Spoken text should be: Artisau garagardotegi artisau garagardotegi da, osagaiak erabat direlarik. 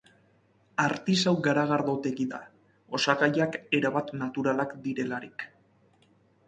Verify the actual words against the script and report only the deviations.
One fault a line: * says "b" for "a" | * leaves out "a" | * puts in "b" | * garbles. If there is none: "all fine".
* leaves out "artisau garagardotegi"
* puts in "naturalak"